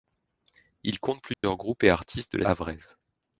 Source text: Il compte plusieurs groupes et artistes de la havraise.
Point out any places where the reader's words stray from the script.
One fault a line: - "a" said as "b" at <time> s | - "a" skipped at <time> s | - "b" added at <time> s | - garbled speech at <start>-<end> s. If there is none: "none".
none